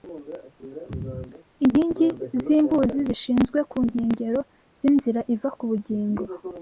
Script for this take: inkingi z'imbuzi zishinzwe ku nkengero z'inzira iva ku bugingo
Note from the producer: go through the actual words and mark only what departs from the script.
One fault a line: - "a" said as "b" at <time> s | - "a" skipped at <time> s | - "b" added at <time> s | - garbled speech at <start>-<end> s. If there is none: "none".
none